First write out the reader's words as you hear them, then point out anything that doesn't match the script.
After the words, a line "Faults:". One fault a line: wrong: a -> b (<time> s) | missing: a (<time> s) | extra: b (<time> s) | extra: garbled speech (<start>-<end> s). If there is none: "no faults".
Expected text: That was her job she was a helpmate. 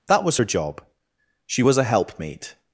That was her job she was a helpmate.
Faults:
no faults